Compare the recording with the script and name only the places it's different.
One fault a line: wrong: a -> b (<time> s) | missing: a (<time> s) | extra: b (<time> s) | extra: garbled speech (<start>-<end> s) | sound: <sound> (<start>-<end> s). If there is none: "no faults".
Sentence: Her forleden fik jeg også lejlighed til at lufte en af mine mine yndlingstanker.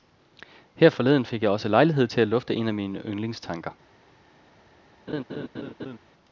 missing: mine (3.0 s)
sound: laugh (5.1-6.0 s)